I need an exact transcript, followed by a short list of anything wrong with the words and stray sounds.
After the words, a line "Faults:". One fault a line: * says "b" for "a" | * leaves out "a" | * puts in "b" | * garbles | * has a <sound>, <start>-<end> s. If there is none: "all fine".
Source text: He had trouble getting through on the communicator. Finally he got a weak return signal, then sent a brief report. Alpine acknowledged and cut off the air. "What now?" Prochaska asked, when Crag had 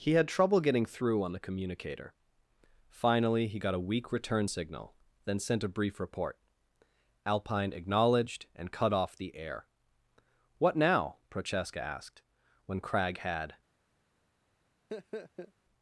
He had trouble getting through on the communicator. Finally he got a weak return signal, then sent a brief report. Alpine acknowledged and cut off the air. "What now?" Prochaska asked, when Crag had
Faults:
* has a laugh, 14.9-15.5 s